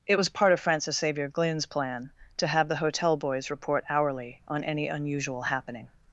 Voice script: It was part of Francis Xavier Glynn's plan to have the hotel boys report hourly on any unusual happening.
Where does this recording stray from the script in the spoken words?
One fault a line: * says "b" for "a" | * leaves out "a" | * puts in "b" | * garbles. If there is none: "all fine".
all fine